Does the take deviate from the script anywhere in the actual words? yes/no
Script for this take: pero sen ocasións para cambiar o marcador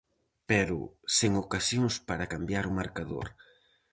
no